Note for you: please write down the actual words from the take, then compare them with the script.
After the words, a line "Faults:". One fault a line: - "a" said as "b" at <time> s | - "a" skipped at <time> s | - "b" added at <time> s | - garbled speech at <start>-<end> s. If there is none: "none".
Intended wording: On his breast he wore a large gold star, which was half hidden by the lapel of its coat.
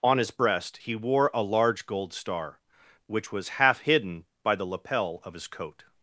On his breast he wore a large gold star, which was half hidden by the lapel of his coat.
Faults:
- "its" said as "his" at 5.3 s